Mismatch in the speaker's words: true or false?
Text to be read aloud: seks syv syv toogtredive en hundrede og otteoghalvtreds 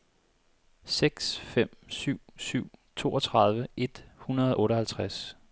true